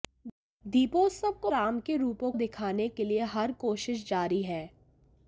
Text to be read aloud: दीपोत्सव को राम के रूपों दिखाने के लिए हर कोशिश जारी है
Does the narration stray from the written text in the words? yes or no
no